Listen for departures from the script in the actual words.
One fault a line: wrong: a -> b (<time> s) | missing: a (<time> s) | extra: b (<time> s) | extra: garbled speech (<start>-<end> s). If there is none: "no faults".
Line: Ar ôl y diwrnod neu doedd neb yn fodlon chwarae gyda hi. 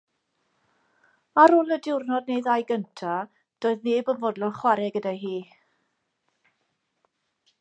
extra: ddau gyntaf (2.5 s)